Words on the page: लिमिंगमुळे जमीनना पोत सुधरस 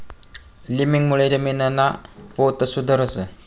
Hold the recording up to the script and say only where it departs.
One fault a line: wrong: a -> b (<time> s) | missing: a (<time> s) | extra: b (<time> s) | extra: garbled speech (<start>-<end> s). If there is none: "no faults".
no faults